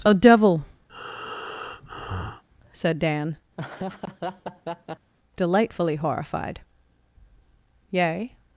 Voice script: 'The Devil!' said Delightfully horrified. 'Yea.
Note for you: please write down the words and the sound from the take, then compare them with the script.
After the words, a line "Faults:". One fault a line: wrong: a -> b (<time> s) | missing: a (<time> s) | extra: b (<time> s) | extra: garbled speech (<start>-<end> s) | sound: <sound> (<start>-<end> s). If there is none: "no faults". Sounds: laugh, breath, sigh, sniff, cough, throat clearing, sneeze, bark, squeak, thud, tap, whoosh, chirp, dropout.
'A Devil!' said Dan, delightfully horrified. 'Yea.
Faults:
wrong: The -> A (0.0 s)
sound: breath (0.9-2.4 s)
extra: Dan (3.0 s)
sound: laugh (3.6-5.1 s)